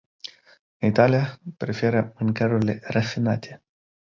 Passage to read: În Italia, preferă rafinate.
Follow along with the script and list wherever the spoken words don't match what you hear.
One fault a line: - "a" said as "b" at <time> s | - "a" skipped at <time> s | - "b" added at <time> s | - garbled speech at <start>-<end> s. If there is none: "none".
- "mâncărurile" added at 2.2 s